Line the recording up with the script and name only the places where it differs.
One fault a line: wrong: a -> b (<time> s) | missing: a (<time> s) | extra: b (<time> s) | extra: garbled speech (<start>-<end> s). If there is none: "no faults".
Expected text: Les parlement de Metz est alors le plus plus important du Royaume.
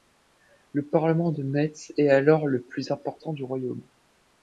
wrong: Les -> Le (0.7 s)
missing: plus (2.9 s)